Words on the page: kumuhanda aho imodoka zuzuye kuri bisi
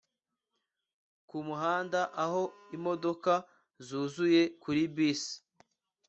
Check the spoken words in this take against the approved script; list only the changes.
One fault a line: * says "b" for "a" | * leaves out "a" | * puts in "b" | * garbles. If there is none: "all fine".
all fine